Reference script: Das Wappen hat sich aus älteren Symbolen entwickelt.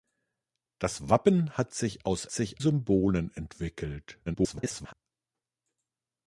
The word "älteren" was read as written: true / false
false